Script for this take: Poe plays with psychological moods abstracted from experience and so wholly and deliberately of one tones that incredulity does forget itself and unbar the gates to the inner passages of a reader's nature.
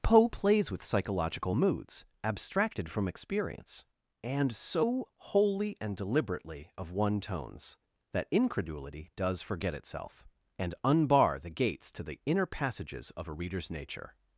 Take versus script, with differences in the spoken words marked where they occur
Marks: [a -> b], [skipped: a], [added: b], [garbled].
Poe plays with psychological moods abstracted from experience and so wholly and deliberately of one tones that incredulity does forget itself and unbar the gates to the inner passages of a reader's nature.